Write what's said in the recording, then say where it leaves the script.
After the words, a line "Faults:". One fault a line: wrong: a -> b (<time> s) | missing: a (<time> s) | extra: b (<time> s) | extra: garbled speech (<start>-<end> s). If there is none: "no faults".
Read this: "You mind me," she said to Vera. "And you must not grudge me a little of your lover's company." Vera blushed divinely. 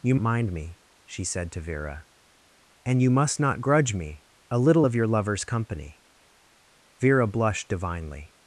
"You mind me," she said to Vera. "And you must not grudge me a little of your lover's company." Vera blushed divinely.
Faults:
no faults